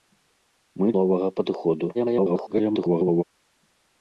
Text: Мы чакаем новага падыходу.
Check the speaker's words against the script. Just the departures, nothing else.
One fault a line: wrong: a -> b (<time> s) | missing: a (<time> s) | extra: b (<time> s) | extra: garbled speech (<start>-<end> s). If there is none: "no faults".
missing: чакаем (0.9 s)
extra: garbled speech (1.9-3.2 s)